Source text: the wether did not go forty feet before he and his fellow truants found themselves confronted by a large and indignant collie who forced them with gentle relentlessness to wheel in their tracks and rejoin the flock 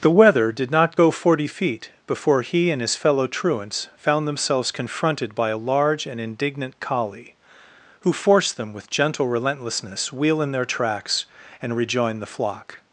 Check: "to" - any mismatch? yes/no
yes